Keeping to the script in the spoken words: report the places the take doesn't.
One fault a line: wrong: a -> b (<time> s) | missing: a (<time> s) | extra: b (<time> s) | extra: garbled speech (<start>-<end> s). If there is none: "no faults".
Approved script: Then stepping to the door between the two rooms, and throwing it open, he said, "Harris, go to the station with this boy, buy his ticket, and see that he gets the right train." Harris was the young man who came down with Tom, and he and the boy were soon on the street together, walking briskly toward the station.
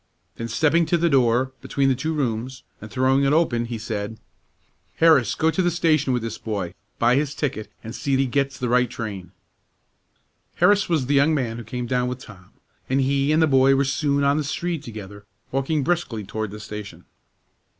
missing: that (8.2 s)